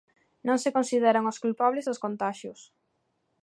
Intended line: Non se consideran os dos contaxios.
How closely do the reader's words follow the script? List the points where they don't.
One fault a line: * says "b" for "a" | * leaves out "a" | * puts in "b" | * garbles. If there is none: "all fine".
* puts in "culpables"